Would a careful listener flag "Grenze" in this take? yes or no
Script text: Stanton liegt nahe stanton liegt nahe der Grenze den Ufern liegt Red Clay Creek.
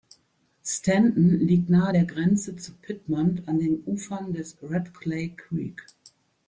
yes